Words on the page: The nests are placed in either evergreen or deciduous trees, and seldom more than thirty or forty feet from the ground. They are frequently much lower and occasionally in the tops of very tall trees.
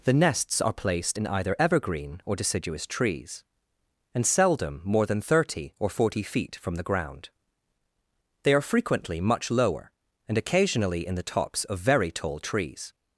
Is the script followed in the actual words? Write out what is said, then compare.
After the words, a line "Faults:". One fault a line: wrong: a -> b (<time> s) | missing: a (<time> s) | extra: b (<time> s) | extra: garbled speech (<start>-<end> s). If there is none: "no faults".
The nests are placed in either evergreen or deciduous trees, and seldom more than thirty or forty feet from the ground. They are frequently much lower and occasionally in the tops of very tall trees.
Faults:
no faults